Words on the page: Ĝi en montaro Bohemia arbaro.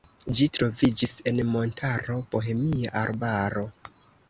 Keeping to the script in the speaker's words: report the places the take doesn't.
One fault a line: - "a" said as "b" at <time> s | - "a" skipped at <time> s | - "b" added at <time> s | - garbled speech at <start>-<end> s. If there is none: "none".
- "troviĝis" added at 0.6 s